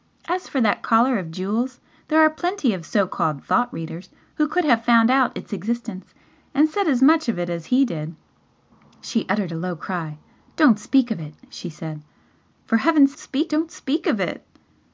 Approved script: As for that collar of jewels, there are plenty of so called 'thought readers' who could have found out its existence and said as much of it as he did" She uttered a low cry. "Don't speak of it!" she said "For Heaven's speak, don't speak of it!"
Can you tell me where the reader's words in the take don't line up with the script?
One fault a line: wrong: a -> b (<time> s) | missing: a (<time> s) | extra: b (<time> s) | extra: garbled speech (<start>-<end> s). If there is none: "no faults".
no faults